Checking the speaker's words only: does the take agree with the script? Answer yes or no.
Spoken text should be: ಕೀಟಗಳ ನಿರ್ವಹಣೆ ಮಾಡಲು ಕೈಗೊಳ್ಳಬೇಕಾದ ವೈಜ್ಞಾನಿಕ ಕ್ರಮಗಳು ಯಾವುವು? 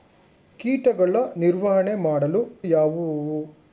no